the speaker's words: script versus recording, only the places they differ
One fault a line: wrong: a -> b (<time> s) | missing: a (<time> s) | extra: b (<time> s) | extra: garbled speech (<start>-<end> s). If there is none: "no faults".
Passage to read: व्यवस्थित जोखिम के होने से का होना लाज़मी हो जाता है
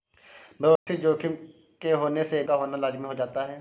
no faults